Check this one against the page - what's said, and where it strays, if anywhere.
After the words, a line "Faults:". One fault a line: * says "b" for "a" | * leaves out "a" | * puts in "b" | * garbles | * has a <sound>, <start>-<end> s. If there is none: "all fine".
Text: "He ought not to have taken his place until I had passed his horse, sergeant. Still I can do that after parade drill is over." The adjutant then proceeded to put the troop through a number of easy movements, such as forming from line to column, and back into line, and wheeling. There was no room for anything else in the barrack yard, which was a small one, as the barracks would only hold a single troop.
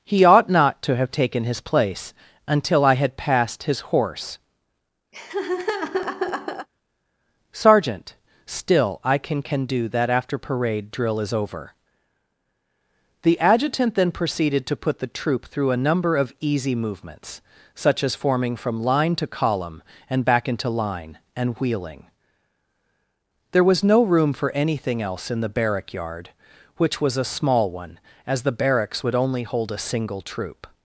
"He ought not to have taken his place until I had passed his horse, sergeant. Still I can can do that after parade drill is over." The adjutant then proceeded to put the troop through a number of easy movements, such as forming from line to column, and back into line, and wheeling. There was no room for anything else in the barrack yard, which was a small one, as the barracks would only hold a single troop.
Faults:
* has a laugh, 5.1-6.7 s
* puts in "can"